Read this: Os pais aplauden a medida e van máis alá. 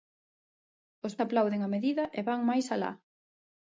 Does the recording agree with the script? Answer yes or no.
no